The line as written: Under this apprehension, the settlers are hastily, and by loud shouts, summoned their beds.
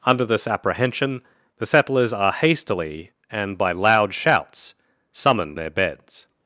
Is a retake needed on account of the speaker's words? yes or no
no